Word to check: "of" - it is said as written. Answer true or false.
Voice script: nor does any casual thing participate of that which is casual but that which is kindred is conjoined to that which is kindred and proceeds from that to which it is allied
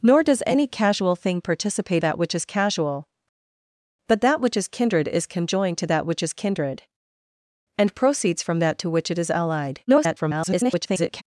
false